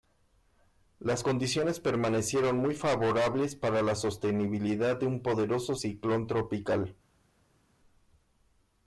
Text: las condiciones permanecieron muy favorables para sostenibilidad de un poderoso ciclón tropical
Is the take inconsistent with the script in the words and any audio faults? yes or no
yes